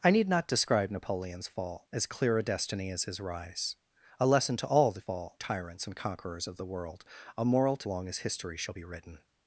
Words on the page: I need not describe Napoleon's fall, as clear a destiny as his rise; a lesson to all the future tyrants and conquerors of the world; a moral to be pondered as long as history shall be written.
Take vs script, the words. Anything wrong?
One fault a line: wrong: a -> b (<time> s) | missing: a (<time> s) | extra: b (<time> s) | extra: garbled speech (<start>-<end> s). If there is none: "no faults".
wrong: future -> fall (5.0 s)
missing: be pondered as (7.9 s)